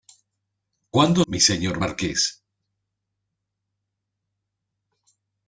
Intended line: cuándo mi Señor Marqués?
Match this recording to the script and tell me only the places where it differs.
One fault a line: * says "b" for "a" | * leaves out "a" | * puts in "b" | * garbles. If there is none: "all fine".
all fine